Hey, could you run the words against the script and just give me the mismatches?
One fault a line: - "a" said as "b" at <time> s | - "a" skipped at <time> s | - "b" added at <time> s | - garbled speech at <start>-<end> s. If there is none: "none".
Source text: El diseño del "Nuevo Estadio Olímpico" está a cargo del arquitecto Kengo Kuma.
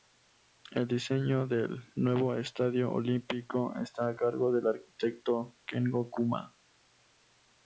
none